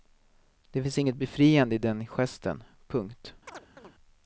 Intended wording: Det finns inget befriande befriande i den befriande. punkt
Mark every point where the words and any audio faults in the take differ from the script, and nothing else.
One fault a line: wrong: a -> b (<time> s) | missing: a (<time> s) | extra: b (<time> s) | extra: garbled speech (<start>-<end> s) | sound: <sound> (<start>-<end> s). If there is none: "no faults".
missing: befriande (1.7 s)
wrong: befriande -> gesten (2.1 s)
sound: chirp (3.5-4.0 s)